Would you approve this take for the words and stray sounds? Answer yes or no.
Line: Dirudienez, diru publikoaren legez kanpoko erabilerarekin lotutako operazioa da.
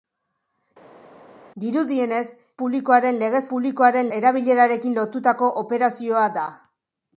no